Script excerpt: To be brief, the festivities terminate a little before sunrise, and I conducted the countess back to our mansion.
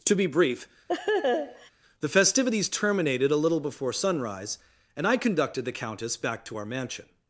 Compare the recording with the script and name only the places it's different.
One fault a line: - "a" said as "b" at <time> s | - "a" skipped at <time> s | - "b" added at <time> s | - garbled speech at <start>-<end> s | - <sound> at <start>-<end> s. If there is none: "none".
- laugh at 0.9-1.7 s
- "terminate" said as "terminated" at 2.7 s